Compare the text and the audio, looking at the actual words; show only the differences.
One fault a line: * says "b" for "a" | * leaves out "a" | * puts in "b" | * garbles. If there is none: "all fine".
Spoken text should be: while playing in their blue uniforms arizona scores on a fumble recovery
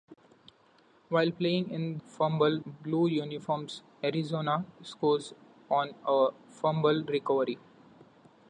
* says "fumble" for "their"